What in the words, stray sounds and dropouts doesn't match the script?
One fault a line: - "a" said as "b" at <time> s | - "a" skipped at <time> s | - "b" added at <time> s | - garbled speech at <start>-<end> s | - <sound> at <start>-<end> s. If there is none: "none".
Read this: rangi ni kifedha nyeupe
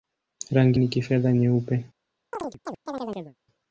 - chirp at 2.3-3.4 s